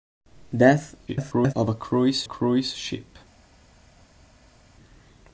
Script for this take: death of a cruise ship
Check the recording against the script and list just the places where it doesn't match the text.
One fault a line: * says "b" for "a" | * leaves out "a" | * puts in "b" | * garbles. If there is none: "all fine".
* garbles
* puts in "cruise"